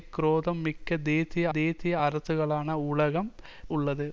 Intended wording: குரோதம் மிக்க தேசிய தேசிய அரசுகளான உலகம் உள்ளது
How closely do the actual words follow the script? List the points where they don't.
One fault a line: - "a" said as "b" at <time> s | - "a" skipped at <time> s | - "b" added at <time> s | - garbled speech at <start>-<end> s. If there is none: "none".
none